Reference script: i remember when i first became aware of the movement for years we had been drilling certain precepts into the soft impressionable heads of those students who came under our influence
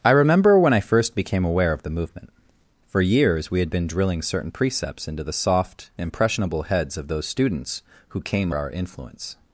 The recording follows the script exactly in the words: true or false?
false